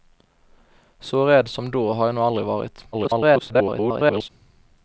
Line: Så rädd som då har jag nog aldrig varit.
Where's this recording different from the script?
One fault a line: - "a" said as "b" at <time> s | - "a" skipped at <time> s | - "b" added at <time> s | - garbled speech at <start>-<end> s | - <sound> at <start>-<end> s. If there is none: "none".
- garbled speech at 2.9-4.3 s